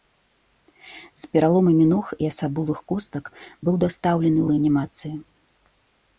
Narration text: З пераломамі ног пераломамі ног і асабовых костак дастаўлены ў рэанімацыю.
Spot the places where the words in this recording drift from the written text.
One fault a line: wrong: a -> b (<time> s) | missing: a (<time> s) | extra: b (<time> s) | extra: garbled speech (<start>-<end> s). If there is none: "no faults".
missing: пераломамі ног (2.0 s)
extra: быў (3.6 s)